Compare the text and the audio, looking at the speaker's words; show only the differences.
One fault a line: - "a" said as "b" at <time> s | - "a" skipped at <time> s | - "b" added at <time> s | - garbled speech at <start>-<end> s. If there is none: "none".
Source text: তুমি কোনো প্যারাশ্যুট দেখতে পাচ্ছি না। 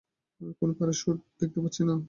- "তুমি" said as "আমি" at 0.4 s